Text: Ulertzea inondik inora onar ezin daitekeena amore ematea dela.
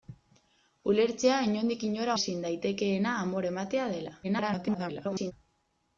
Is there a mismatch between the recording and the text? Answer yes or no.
yes